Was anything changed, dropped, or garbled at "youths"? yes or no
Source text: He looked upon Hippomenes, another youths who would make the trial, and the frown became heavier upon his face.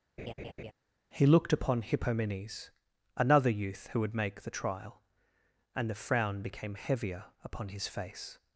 yes